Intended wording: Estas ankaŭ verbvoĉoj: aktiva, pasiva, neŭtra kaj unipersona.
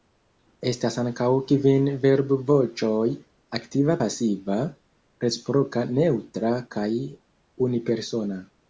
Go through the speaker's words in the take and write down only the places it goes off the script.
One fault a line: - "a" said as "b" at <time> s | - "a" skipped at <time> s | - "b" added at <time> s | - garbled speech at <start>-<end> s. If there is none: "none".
- "kvin" added at 1.5 s
- "reciproka" added at 5.3 s